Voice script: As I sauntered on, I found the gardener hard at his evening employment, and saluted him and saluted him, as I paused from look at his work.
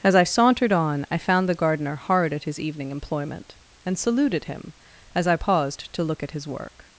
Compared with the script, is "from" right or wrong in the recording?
wrong